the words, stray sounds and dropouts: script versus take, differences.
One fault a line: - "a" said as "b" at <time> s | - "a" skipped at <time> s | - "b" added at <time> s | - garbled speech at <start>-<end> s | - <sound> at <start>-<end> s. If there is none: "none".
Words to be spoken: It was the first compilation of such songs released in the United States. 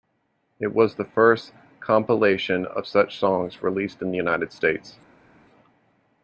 none